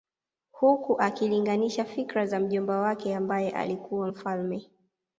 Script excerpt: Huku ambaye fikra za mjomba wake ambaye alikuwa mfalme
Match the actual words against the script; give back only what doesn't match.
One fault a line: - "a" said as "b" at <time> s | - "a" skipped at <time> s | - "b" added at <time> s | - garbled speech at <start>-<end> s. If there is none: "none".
- "ambaye" said as "akilinganisha" at 1.0 s